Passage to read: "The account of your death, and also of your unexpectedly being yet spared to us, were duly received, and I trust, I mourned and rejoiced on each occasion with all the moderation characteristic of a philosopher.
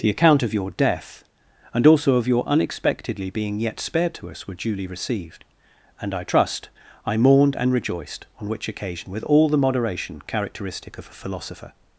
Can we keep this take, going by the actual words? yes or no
no